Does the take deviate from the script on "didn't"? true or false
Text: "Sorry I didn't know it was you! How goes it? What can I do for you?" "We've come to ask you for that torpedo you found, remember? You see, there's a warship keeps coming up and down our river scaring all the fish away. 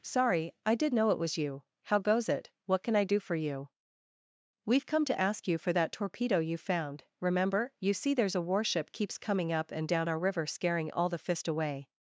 true